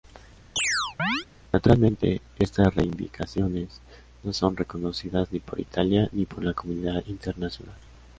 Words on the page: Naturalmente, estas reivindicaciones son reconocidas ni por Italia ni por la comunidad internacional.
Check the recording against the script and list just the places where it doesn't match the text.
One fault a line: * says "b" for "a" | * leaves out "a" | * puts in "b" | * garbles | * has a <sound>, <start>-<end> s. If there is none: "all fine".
* has a chirp, 0.6-1.3 s
* puts in "no"